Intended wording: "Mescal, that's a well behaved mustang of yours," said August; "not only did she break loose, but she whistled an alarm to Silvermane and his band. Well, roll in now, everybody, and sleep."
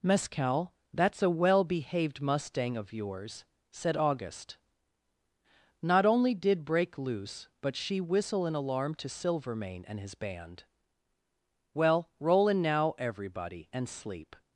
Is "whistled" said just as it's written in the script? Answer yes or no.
no